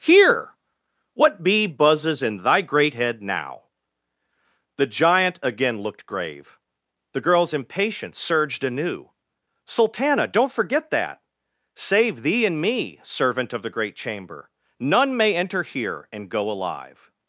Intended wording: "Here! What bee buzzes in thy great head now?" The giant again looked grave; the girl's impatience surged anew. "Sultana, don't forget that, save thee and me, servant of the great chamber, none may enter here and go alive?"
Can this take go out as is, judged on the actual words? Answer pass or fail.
pass